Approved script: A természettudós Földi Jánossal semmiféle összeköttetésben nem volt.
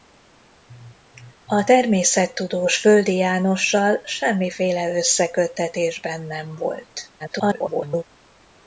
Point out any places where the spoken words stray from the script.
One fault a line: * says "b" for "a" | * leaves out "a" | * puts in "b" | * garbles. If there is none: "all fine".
* garbles